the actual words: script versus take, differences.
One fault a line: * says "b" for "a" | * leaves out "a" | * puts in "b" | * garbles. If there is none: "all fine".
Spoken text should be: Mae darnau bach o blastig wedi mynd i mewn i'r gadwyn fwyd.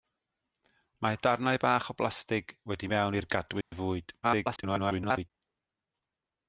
* leaves out "mynd"
* garbles